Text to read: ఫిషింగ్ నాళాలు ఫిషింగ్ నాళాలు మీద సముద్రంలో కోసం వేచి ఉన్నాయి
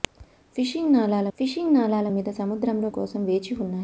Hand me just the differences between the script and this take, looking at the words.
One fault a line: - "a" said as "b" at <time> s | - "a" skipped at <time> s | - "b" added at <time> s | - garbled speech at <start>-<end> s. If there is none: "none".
none